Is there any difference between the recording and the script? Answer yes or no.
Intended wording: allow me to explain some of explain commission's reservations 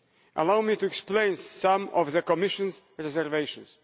yes